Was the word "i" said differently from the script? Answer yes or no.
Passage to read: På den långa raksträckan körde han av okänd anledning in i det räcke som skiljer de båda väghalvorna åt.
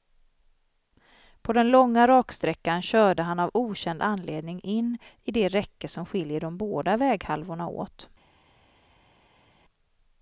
no